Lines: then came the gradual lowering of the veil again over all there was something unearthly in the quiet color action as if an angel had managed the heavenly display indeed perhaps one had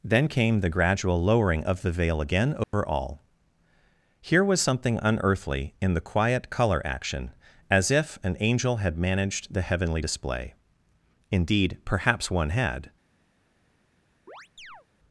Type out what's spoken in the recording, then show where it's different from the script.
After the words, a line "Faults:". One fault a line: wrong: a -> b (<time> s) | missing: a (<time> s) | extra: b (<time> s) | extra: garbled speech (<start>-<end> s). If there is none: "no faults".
then came the gradual lowering of the veil again over all here was something unearthly in the quiet color action as if an angel had managed the heavenly display indeed perhaps one had
Faults:
wrong: there -> here (4.2 s)